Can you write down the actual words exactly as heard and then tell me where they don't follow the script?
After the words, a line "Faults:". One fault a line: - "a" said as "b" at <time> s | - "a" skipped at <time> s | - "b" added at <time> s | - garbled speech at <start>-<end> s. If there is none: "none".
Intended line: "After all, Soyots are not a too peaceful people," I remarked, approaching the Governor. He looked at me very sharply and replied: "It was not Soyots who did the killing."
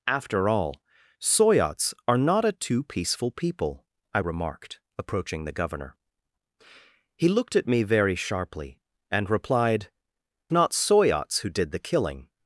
"After all, Soyots are not a too peaceful people," I remarked, approaching the Governor. He looked at me very sharply and replied: "Not Soyots who did the killing."
Faults:
- "It was" skipped at 9.9 s